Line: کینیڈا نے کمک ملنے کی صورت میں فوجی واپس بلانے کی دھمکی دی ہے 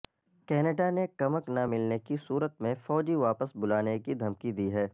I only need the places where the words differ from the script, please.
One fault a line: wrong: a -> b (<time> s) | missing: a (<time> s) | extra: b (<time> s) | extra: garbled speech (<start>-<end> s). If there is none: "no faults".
extra: نہ (1.5 s)